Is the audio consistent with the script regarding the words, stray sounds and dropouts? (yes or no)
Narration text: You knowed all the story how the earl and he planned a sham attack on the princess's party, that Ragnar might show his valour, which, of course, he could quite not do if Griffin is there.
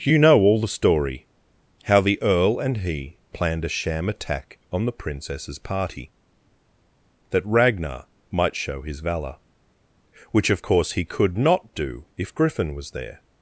no